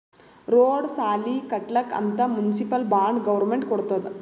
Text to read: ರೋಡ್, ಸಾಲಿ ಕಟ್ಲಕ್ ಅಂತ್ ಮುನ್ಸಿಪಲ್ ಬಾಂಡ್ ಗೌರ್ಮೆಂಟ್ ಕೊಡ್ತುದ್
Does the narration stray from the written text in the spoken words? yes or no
no